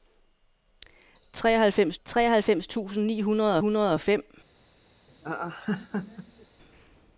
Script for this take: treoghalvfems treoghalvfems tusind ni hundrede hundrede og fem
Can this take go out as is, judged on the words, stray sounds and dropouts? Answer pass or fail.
fail